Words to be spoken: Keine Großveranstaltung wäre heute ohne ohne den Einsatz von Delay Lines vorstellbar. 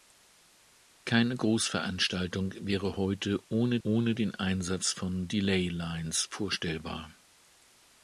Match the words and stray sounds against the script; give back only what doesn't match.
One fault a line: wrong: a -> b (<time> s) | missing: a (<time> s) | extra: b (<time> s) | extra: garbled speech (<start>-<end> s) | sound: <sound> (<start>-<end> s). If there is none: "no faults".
no faults